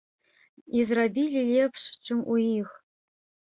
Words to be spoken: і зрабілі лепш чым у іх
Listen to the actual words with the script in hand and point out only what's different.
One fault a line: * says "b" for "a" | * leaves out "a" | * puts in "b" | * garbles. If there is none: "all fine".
all fine